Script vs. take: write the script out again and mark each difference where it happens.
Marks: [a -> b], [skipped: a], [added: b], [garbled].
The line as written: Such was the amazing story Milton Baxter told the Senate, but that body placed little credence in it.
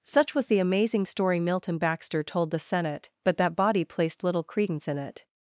Such was the amazing story Milton Baxter told the Senate, but that body placed little credence in it.